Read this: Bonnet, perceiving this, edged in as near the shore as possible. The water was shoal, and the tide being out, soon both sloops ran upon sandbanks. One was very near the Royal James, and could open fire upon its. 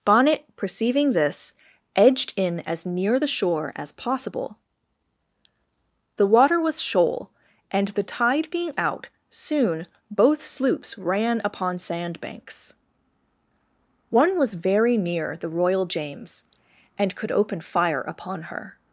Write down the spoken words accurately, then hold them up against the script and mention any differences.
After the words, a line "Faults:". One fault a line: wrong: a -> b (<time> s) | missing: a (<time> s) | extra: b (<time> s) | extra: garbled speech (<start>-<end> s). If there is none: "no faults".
Bonnet, perceiving this, edged in as near the shore as possible. The water was shoal, and the tide being out, soon both sloops ran upon sandbanks. One was very near the Royal James, and could open fire upon her.
Faults:
wrong: its -> her (18.4 s)